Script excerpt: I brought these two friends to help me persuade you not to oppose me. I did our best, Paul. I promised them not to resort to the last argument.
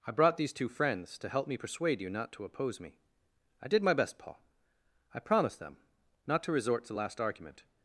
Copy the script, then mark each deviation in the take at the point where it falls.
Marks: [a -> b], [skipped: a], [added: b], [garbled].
I brought these two friends to help me persuade you not to oppose me. I did [our -> my] best, Paul. I promised them not to resort to the last argument.